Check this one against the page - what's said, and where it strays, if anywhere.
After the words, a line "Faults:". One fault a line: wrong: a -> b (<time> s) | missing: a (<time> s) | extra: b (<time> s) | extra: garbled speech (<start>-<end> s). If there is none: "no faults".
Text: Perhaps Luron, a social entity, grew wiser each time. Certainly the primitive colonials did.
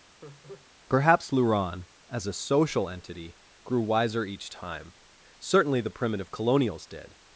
Perhaps Luron, as a social entity, grew wiser each time. Certainly the primitive colonials did.
Faults:
extra: as (2.1 s)